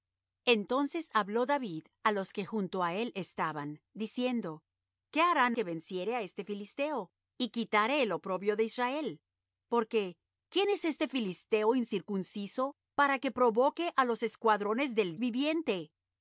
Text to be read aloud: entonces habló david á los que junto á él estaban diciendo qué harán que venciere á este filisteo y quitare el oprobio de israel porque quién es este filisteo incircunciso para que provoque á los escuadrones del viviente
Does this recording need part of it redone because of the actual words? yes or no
no